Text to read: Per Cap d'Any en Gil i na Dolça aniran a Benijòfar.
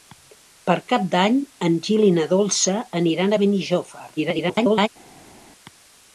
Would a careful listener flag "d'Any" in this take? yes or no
no